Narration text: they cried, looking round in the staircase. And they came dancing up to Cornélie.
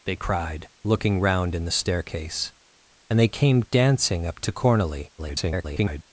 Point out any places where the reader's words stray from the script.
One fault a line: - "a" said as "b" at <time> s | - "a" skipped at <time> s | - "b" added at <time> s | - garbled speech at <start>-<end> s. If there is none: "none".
- garbled speech at 5.2-6.0 s